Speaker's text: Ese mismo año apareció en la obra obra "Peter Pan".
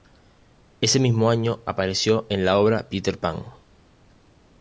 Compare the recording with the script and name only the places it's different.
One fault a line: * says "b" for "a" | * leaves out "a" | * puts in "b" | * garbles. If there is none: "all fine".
* leaves out "obra"